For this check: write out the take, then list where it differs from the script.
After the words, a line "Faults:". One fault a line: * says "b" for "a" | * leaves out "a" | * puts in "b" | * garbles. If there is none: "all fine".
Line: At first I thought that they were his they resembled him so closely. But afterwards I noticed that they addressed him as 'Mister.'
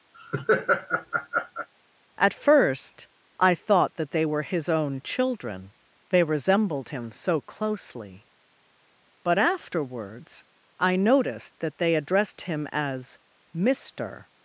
At first I thought that they were his own children, they resembled him so closely. But afterwards I noticed that they addressed him as 'Mister.'
Faults:
* puts in "own children"